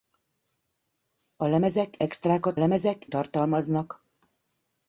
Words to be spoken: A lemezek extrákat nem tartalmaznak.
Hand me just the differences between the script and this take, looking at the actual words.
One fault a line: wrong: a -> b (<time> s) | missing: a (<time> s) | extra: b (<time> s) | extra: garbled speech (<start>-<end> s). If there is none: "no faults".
wrong: nem -> lemezek (2.5 s)